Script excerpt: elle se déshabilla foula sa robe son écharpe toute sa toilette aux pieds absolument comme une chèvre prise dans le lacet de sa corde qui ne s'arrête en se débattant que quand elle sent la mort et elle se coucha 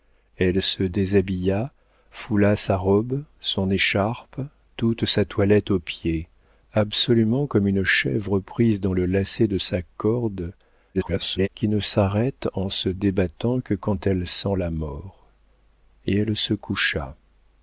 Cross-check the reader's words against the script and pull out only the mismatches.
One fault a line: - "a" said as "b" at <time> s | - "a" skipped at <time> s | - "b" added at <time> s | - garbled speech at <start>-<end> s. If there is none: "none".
- garbled speech at 10.9-11.5 s